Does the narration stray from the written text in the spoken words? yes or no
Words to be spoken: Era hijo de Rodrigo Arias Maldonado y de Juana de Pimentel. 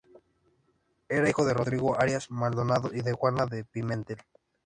no